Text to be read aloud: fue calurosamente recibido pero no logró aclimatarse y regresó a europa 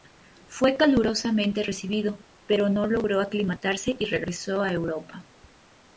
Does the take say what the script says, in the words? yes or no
yes